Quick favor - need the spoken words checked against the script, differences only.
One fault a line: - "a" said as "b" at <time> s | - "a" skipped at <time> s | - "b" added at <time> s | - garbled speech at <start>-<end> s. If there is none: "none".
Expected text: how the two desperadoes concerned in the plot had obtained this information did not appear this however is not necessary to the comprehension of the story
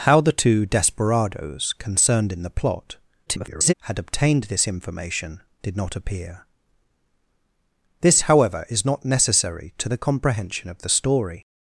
- garbled speech at 3.3-3.7 s